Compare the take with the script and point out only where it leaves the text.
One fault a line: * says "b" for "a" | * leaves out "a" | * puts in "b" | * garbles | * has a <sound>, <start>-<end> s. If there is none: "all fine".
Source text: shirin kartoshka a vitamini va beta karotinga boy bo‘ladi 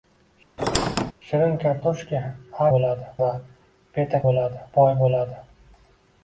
* has a squeak, 0.6-1.1 s
* says "bo‘ladi" for "vitamini"
* says "bo‘ladi" for "karotinga"